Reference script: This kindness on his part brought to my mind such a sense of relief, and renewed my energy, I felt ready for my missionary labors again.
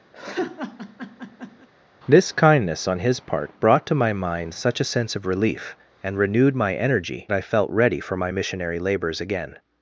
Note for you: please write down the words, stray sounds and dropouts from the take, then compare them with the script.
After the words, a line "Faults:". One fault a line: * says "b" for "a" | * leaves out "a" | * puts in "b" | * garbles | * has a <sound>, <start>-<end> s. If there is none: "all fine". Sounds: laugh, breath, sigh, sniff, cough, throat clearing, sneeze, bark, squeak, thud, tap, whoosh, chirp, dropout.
This kindness on his part brought to my mind such a sense of relief, and renewed my energy, I felt ready for my missionary labors again.
Faults:
* has a laugh, 0.1-1.7 s